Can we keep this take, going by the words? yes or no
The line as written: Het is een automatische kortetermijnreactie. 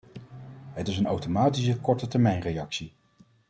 yes